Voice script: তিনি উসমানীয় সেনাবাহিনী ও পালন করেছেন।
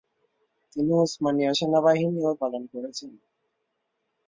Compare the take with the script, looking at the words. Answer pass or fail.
pass